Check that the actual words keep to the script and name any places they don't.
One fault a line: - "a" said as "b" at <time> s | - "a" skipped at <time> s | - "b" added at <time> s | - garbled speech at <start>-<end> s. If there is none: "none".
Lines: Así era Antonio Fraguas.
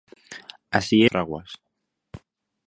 - "era Antonio" skipped at 1.1 s